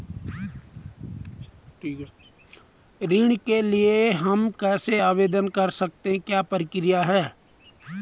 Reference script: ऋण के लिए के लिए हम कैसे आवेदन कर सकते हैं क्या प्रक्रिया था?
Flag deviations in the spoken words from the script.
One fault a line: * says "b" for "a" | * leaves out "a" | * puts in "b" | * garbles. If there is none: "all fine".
* leaves out "के लिए"
* says "है" for "था"